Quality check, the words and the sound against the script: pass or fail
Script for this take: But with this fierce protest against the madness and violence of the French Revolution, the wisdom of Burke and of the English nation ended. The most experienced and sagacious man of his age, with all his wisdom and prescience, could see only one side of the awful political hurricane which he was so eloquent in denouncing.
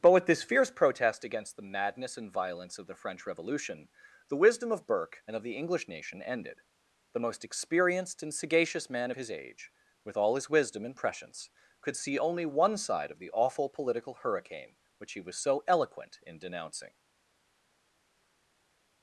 pass